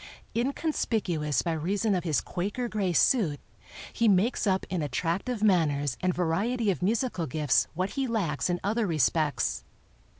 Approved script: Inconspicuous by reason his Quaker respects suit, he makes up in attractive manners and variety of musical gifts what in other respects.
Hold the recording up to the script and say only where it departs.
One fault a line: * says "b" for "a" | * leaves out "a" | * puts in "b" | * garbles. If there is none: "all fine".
* puts in "of"
* says "gray" for "respects"
* puts in "he lacks"